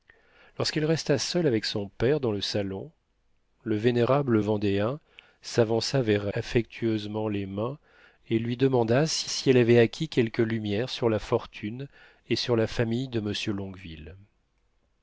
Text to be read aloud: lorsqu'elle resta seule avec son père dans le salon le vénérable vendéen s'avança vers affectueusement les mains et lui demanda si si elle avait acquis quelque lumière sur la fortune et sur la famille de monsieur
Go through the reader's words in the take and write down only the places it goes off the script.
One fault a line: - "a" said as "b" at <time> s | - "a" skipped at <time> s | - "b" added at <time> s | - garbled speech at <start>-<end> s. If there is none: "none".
none